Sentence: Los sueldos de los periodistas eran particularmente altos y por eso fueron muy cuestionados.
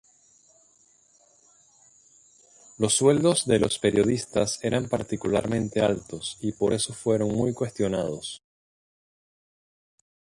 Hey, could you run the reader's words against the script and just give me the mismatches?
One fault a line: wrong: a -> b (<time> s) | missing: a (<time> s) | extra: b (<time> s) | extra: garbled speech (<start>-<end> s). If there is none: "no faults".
no faults